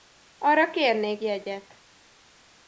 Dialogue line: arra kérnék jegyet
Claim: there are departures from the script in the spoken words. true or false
false